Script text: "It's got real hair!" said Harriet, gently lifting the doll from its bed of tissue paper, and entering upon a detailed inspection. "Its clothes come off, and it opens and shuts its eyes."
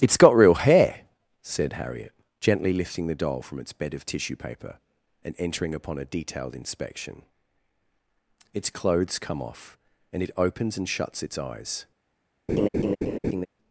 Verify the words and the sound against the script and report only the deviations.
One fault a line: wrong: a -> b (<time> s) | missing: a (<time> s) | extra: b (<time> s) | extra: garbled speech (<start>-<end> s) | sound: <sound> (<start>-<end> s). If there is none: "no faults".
sound: laugh (12.5-13.5 s)